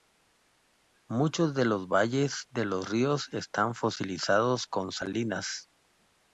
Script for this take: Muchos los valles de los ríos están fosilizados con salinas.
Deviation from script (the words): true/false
true